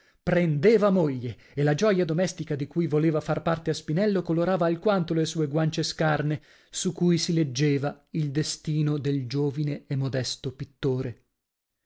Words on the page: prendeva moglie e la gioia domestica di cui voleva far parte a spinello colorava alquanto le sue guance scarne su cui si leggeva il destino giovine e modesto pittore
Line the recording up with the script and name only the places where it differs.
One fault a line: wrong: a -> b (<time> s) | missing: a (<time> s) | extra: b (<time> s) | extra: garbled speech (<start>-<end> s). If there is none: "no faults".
extra: del (9.0 s)